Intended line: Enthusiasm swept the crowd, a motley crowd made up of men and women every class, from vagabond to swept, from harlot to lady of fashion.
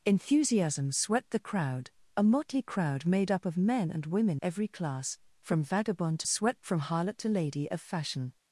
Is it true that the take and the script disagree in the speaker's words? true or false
false